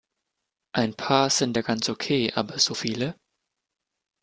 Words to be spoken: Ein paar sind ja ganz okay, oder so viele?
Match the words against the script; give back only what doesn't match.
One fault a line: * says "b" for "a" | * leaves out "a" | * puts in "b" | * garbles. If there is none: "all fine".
* says "aber" for "oder"